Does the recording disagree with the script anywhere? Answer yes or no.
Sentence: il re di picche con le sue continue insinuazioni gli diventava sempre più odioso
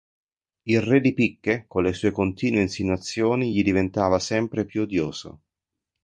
no